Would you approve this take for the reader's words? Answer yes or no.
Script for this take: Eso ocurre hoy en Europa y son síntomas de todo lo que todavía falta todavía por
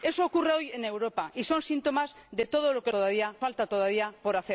yes